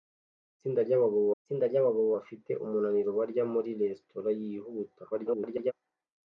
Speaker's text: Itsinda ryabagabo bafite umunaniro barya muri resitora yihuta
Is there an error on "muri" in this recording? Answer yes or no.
no